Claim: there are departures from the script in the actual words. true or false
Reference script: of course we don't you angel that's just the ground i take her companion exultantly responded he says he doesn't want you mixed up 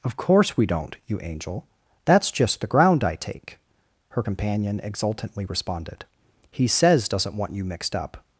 true